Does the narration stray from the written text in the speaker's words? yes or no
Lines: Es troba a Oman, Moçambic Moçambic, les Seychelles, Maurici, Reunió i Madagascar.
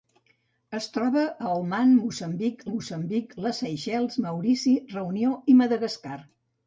no